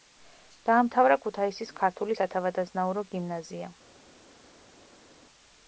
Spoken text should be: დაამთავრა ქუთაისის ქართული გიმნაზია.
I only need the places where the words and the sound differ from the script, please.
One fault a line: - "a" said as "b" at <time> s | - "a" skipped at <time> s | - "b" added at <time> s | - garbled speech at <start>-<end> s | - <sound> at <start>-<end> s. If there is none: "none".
- "სათავადაზნაურო" added at 2.2 s